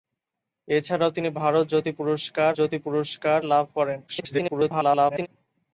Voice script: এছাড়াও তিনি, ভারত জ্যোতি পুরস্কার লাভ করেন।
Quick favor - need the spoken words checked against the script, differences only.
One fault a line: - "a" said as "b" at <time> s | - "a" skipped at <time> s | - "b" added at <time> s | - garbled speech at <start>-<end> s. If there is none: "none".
- "জ্যোতি পুরস্কার" added at 2.5 s
- garbled speech at 4.1-5.3 s